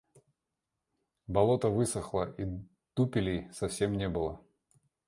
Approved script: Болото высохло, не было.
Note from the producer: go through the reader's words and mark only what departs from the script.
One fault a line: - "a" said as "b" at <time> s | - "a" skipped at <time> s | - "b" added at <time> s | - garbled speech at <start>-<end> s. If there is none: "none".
- "и дупелей совсем" added at 2.4 s